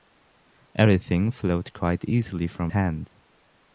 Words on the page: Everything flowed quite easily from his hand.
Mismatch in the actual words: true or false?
true